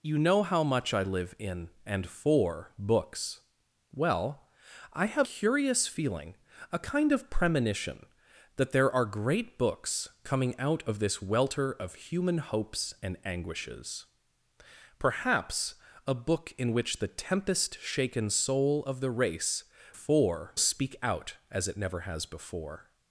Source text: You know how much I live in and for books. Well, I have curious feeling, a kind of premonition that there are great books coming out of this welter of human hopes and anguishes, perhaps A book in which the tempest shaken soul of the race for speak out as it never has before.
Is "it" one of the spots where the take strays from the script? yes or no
no